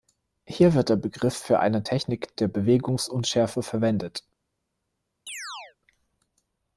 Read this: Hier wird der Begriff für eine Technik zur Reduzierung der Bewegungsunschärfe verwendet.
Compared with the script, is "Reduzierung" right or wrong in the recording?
wrong